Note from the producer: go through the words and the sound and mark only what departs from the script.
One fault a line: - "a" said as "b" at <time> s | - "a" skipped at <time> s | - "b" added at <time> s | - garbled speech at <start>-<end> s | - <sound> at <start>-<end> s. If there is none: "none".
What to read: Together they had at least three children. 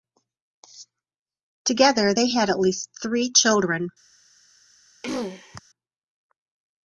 - throat clearing at 5.0-5.6 s